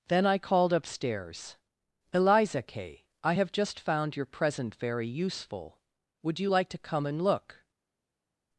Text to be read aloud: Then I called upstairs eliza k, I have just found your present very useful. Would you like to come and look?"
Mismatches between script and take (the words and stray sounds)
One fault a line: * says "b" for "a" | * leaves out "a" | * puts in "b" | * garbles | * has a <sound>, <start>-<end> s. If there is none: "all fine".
all fine